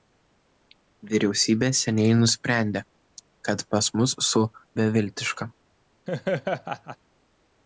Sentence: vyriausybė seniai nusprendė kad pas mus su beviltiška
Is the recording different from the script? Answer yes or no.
no